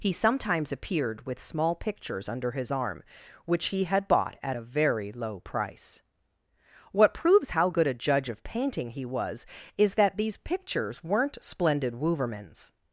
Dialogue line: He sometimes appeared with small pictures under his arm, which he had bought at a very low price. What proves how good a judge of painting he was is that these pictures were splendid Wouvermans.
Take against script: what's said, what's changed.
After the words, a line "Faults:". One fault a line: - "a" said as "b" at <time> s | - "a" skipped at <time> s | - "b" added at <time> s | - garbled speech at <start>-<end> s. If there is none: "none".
He sometimes appeared with small pictures under his arm, which he had bought at a very low price. What proves how good a judge of painting he was is that these pictures weren't splendid Wouvermans.
Faults:
- "were" said as "weren't" at 11.0 s